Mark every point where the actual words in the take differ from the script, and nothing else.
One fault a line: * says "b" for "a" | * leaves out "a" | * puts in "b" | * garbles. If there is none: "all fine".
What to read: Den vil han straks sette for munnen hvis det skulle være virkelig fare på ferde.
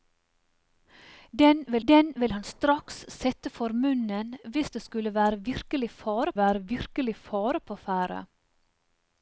* puts in "den vil"
* puts in "være virkelig fare"